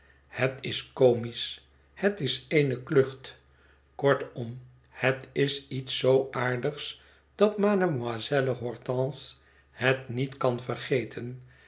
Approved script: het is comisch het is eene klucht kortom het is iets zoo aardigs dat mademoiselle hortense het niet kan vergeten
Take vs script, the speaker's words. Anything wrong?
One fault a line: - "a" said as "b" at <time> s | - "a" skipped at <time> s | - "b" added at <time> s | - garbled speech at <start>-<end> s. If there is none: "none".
none